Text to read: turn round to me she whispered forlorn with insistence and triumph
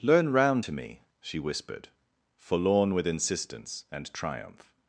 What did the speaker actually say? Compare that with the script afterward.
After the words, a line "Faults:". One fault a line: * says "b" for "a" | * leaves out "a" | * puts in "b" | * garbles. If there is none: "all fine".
learn round to me she whispered forlorn with insistence and triumph
Faults:
* says "learn" for "turn"